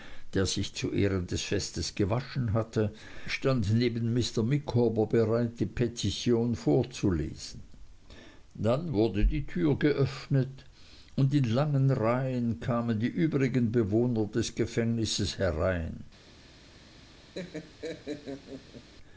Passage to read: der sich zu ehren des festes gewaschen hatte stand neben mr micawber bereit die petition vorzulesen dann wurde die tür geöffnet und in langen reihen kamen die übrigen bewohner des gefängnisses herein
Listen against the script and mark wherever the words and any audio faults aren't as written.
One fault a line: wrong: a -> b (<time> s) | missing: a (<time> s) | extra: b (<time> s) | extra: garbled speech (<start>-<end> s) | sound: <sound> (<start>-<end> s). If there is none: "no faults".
sound: laugh (17.3-18.9 s)